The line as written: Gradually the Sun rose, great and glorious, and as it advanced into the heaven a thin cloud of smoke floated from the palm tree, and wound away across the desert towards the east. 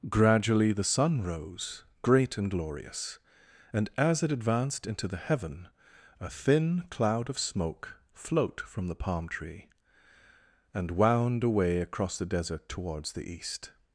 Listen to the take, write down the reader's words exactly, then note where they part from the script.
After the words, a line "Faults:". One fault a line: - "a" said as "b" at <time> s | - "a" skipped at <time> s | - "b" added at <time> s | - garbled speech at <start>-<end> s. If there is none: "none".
Gradually the Sun rose, great and glorious, and as it advanced into the heaven a thin cloud of smoke float from the palm tree, and wound away across the desert towards the east.
Faults:
- "floated" said as "float" at 8.1 s